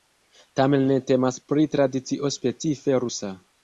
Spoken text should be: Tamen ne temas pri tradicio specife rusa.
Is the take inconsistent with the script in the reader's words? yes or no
no